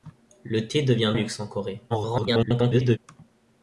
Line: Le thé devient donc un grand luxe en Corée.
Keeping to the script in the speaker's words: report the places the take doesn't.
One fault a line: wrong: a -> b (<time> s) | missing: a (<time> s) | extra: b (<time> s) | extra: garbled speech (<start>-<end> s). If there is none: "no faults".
missing: donc un grand (1.1 s)
extra: garbled speech (1.9-3.0 s)